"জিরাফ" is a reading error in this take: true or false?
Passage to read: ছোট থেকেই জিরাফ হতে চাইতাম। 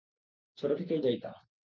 true